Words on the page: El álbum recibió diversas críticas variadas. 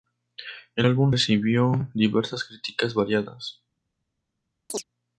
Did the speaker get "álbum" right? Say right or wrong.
right